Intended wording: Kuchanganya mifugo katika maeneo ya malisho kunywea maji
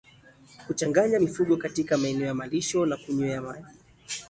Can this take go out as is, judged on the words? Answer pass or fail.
fail